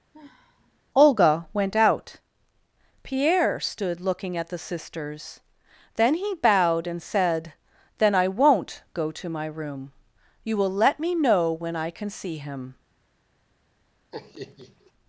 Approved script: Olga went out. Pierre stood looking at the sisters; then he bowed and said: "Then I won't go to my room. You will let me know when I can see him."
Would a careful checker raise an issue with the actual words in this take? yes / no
no